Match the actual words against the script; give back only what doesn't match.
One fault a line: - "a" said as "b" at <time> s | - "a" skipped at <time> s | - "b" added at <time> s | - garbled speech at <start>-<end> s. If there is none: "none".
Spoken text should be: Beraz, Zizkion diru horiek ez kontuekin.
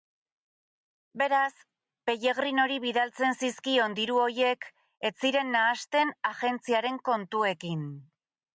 - "Pellegrinori bidaltzen" added at 2.1 s
- "ziren nahasten agentziaren" added at 5.3 s